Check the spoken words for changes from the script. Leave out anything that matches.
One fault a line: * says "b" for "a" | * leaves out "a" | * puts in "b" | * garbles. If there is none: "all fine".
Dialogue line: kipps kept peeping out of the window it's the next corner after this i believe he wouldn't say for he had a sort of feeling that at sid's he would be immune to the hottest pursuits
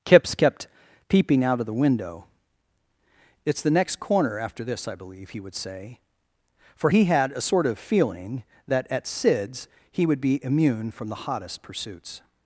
* says "would" for "wouldn't"
* says "from" for "to"